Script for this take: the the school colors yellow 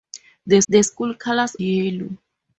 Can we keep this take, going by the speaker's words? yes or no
yes